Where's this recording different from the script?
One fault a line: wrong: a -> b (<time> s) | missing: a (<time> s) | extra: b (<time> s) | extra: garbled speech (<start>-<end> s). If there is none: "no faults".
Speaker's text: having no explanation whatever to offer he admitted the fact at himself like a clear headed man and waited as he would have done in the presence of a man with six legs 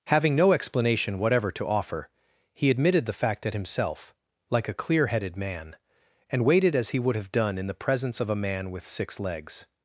no faults